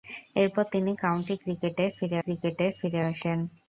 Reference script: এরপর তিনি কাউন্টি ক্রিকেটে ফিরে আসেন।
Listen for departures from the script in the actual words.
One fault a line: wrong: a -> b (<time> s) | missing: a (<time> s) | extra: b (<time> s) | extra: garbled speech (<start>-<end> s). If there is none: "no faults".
extra: ক্রিকেটে ফিরে (2.2 s)